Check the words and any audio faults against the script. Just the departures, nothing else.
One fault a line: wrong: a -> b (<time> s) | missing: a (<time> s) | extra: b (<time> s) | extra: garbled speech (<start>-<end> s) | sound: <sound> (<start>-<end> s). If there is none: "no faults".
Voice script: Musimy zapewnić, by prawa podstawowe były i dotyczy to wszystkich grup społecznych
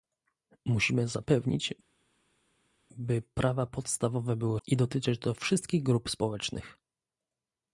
no faults